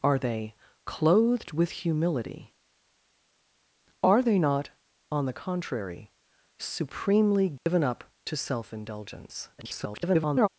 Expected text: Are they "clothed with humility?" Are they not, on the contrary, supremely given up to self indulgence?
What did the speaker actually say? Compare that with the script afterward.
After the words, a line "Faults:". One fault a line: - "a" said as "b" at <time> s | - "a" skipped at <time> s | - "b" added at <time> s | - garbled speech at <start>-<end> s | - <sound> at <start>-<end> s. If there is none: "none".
Are they "clothed with humility?" Are they not, on the contrary, supremely given up to self indulgence? [garbled]
Faults:
- dropout at 7.6-7.7 s
- garbled speech at 9.6-10.5 s